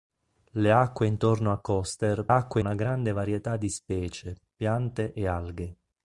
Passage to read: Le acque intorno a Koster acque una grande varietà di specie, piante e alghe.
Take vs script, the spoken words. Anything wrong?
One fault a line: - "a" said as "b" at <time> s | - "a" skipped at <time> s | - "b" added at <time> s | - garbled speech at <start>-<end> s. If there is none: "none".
none